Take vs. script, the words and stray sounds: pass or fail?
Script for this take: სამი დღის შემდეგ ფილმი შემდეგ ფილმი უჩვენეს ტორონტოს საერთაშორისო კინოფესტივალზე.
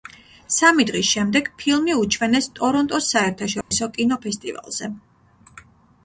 fail